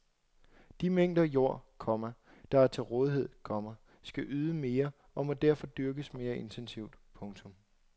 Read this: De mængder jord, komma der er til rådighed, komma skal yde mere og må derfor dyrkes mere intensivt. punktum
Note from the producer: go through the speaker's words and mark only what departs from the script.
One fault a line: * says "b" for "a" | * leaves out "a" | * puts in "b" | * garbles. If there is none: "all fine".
all fine